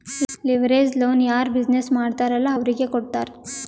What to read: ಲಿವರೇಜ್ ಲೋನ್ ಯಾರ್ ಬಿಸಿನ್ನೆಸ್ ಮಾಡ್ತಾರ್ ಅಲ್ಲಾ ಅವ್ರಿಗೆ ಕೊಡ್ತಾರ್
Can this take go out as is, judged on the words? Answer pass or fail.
pass